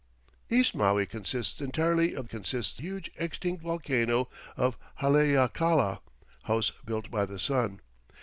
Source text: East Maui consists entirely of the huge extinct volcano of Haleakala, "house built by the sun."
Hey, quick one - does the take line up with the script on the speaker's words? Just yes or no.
no